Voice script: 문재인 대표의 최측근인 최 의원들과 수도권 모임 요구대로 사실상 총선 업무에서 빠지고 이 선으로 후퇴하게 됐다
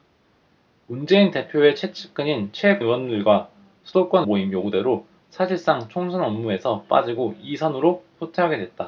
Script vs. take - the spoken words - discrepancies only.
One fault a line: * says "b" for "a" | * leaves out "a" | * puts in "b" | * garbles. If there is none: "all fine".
all fine